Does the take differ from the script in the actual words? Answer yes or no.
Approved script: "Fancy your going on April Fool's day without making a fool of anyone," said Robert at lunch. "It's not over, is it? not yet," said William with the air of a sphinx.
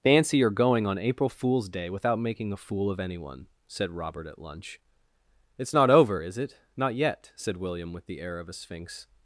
no